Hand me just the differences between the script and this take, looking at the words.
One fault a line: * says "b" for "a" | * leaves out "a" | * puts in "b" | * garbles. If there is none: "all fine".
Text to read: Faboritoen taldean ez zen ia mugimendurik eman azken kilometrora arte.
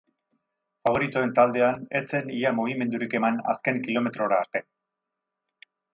all fine